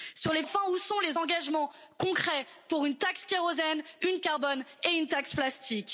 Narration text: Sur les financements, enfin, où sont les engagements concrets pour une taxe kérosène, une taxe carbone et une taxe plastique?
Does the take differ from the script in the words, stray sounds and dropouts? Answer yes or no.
yes